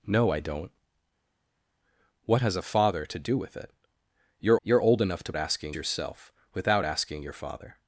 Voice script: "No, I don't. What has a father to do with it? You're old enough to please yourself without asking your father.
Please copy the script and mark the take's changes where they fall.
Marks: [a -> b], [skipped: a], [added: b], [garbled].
"No, I don't. What has a father to do with it? You're [added: you're] old enough to [please -> asking] yourself without asking your father.